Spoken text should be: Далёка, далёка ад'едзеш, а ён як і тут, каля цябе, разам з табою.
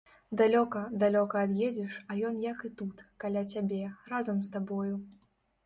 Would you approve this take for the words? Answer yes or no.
yes